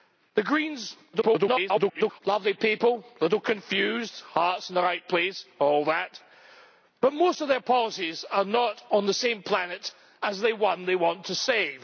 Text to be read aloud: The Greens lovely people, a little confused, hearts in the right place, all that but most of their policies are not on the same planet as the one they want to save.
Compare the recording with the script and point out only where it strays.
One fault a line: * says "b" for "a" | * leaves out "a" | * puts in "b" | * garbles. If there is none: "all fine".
* garbles